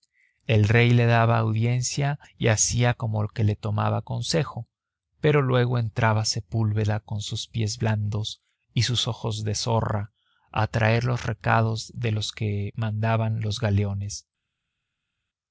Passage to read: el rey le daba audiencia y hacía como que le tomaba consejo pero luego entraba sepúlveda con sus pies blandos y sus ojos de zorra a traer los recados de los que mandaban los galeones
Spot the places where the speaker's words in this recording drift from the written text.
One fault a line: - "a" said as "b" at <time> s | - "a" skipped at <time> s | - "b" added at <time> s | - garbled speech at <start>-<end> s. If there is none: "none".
none